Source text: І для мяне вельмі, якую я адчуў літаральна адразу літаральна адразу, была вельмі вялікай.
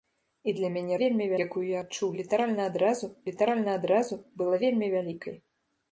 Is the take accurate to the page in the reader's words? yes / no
yes